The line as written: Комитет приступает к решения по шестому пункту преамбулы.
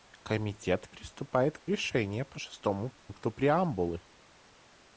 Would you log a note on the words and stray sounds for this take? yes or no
yes